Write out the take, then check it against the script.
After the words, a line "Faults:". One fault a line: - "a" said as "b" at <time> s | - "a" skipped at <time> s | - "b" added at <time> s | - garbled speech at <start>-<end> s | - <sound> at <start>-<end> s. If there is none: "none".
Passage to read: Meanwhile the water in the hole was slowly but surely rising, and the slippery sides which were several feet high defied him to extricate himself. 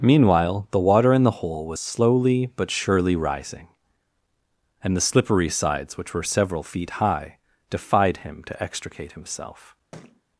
Meanwhile the water in the hole was slowly but surely rising, and the slippery sides which were several feet high defied him to extricate himself.
Faults:
- thud at 9.9-10.2 s